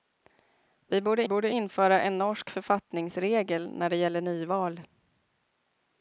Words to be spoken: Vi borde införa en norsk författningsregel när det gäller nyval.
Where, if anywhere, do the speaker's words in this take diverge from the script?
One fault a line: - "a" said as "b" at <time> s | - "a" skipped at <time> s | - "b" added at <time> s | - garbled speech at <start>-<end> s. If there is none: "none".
- "borde" added at 1.3 s